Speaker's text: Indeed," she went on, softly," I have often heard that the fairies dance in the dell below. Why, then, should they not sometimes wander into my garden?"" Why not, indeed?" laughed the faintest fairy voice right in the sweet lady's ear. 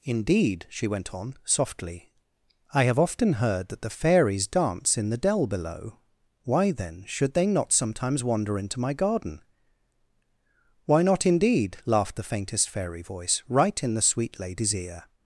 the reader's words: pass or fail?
pass